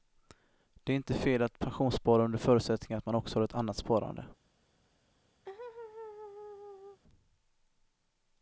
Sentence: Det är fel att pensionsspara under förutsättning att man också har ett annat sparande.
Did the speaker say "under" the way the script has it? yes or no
yes